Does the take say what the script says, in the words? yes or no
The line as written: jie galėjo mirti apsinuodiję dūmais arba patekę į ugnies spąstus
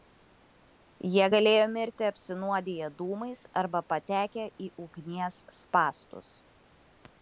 yes